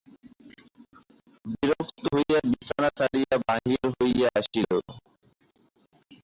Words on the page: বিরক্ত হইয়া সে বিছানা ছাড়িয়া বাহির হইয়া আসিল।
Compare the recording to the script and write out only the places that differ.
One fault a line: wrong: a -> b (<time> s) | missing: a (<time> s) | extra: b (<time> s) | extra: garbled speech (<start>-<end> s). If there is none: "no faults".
missing: সে (2.4 s)